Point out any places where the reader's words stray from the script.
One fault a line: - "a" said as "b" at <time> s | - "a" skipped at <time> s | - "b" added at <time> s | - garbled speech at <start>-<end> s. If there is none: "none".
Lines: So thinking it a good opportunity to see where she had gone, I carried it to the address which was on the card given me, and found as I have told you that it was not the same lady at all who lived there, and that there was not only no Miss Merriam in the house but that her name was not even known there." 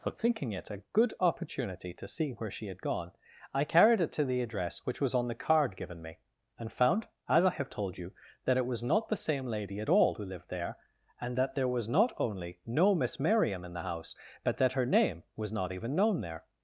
none